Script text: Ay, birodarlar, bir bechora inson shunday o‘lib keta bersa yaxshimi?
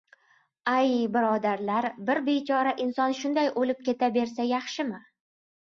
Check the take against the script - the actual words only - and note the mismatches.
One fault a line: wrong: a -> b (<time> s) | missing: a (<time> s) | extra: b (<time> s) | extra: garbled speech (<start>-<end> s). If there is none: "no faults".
no faults